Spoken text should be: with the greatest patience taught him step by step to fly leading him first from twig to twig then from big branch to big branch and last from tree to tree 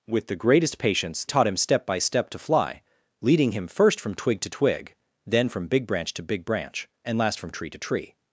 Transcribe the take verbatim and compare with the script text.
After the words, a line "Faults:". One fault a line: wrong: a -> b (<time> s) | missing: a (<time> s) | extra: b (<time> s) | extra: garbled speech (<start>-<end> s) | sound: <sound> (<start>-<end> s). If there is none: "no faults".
with the greatest patience taught him step by step to fly leading him first from twig to twig then from big branch to big branch and last from tree to tree
Faults:
no faults